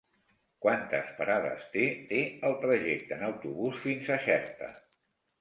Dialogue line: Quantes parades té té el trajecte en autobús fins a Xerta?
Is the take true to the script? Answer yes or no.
yes